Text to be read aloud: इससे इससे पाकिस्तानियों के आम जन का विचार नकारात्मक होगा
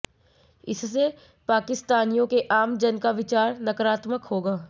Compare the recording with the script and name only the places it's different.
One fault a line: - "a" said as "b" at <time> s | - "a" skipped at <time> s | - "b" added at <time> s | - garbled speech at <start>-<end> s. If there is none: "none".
- "इससे" skipped at 1.1 s